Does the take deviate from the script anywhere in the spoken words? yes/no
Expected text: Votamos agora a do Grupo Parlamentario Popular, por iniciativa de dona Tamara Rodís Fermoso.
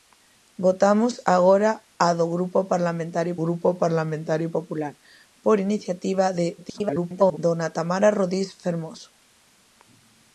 yes